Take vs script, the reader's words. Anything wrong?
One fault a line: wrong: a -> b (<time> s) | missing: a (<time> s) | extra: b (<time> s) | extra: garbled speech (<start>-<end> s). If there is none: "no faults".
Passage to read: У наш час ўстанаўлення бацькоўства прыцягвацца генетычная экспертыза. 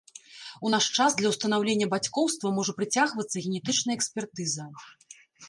extra: для (1.2 s)
extra: можа (2.6 s)